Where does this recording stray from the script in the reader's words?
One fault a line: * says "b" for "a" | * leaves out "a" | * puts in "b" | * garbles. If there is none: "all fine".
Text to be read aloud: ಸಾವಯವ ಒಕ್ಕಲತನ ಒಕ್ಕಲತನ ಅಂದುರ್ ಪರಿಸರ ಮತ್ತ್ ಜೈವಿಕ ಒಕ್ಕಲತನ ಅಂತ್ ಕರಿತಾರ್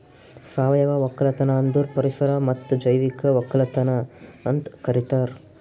* leaves out "ಒಕ್ಕಲತನ"